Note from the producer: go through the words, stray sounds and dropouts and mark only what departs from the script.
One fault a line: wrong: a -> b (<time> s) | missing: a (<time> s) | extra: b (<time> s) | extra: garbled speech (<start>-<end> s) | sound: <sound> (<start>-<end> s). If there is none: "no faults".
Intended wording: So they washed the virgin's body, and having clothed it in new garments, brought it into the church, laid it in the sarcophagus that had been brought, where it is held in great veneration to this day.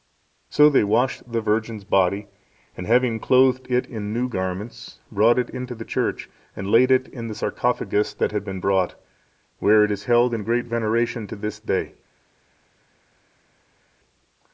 extra: and (6.5 s)